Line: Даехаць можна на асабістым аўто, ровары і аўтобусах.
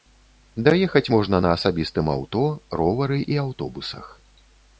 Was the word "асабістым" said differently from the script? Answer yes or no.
no